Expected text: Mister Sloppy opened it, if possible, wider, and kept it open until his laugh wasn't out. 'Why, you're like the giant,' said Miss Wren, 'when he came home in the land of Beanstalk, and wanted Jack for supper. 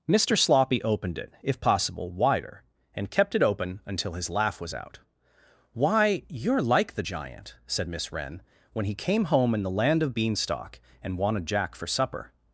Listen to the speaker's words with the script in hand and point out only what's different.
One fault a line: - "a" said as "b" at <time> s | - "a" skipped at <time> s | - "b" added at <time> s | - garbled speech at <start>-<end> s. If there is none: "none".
- "wasn't" said as "was" at 4.6 s